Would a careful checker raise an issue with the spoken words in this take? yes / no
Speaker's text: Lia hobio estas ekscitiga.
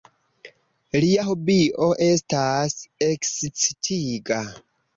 no